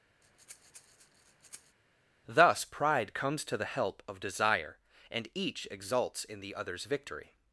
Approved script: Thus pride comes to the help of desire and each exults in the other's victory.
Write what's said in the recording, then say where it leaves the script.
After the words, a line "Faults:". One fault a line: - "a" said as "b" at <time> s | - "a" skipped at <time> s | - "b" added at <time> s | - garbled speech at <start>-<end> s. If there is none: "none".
Thus pride comes to the help of desire and each exults in the other's victory.
Faults:
none